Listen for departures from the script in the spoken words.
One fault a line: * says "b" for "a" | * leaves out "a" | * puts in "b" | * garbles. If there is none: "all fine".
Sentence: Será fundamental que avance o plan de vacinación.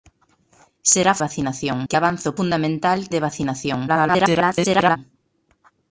* says "vacinación" for "fundamental"
* says "fundamental" for "plan"
* garbles